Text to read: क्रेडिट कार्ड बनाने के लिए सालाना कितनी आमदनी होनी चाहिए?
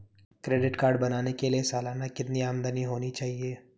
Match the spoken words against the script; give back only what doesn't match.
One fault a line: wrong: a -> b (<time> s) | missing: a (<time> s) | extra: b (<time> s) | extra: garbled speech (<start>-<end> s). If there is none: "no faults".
no faults